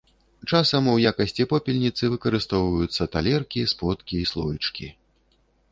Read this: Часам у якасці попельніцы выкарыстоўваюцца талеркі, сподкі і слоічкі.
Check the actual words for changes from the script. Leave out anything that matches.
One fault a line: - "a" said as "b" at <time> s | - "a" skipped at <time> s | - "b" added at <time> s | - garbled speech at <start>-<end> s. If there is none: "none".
none